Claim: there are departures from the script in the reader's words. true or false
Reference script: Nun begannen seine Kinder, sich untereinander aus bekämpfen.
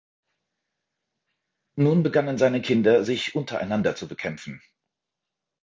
true